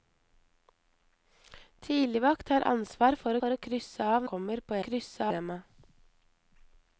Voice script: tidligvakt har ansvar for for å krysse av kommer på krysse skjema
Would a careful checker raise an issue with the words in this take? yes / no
no